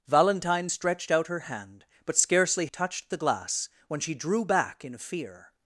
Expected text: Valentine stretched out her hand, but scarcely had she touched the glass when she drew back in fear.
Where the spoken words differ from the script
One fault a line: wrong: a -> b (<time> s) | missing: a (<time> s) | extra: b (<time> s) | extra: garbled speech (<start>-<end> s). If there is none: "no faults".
missing: had she (2.7 s)